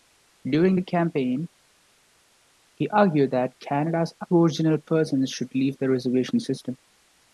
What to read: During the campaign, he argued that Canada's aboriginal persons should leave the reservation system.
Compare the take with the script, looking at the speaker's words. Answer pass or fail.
pass